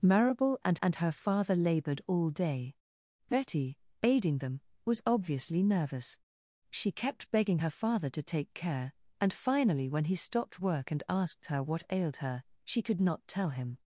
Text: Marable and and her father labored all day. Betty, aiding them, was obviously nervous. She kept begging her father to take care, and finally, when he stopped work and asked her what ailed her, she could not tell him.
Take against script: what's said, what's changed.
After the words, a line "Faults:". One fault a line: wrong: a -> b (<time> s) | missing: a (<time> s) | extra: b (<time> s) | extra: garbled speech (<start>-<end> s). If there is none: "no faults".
Marable and and her father labored all day. Betty, aiding them, was obviously nervous. She kept begging her father to take care, and finally, when he stopped work and asked her what ailed her, she could not tell him.
Faults:
no faults